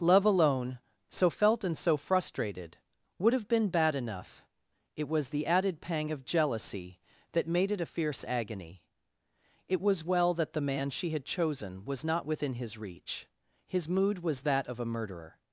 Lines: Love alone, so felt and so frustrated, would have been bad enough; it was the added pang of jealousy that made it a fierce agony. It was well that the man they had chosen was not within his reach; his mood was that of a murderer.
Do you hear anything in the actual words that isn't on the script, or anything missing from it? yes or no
yes